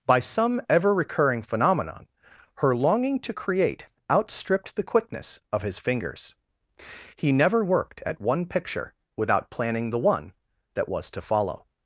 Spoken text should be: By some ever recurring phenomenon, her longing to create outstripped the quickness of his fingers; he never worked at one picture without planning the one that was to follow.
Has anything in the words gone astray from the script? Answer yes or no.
no